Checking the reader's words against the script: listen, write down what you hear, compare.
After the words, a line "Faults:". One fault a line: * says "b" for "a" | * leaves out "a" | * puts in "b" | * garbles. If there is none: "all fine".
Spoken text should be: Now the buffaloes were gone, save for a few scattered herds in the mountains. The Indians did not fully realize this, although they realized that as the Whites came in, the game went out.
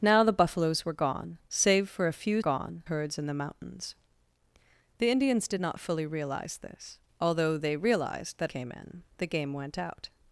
Now the buffaloes were gone, save for a few gone herds in the mountains. The Indians did not fully realize this, although they realized that came in, the game went out.
Faults:
* says "gone" for "scattered"
* leaves out "as the Whites"